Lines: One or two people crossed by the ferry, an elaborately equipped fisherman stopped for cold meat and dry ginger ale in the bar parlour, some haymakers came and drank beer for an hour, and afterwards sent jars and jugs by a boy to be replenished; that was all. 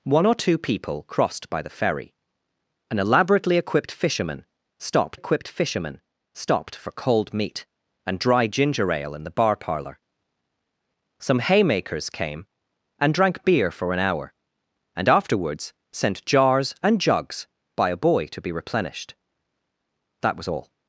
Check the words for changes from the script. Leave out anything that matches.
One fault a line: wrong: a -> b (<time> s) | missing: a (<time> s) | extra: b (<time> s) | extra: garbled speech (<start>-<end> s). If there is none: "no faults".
extra: equipped fisherman stopped (5.1 s)